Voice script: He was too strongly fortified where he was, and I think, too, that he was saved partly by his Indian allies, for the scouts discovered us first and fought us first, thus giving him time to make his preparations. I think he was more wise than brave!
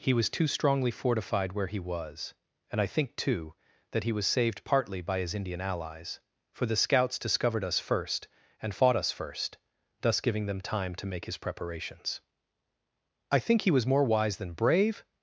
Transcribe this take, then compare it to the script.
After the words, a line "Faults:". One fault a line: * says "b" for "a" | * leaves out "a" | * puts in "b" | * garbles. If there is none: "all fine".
He was too strongly fortified where he was, and I think, too, that he was saved partly by his Indian allies, for the scouts discovered us first and fought us first, thus giving them time to make his preparations. I think he was more wise than brave!
Faults:
* says "them" for "him"